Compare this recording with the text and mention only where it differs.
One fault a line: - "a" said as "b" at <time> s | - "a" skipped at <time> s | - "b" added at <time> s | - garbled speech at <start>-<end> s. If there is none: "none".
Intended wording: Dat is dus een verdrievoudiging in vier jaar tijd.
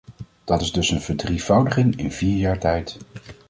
none